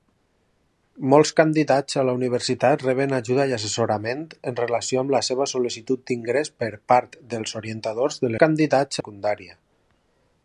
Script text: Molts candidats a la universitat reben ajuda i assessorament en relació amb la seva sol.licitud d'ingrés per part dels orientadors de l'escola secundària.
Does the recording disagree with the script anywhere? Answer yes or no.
yes